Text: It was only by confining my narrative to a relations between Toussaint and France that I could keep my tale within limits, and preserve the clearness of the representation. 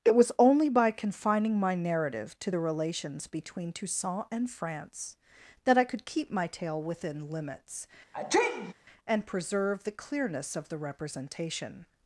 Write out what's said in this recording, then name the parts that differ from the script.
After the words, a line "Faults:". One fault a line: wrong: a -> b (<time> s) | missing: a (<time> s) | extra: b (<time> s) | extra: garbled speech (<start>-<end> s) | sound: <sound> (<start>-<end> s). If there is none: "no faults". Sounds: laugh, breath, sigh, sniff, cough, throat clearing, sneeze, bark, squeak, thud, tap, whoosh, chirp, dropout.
It was only by confining my narrative to the relations between Toussaint and France that I could keep my tale within limits, and preserve the clearness of the representation.
Faults:
wrong: a -> the (2.5 s)
sound: sneeze (8.1-8.7 s)